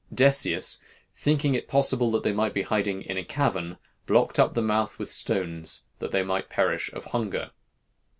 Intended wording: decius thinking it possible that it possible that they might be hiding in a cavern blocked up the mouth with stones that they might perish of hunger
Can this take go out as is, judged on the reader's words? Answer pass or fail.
fail